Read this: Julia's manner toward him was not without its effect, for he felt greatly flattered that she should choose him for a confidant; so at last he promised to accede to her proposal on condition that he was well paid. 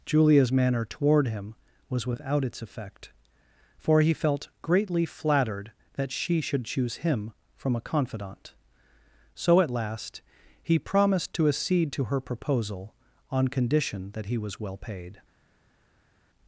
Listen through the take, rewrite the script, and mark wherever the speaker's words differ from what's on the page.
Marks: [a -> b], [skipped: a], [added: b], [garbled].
Julia's manner toward him was [skipped: not] without its effect, for he felt greatly flattered that she should choose him [for -> from] a confidant; so at last he promised to accede to her proposal on condition that he was well paid.